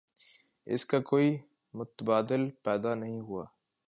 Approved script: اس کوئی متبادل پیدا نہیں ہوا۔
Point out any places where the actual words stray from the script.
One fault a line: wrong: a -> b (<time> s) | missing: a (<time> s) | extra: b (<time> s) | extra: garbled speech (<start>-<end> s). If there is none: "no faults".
extra: کا (0.8 s)